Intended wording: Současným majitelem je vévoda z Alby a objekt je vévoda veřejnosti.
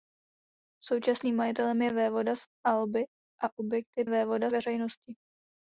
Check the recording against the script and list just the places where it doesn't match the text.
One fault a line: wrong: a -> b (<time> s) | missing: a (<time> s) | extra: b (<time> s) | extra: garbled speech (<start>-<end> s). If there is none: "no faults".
no faults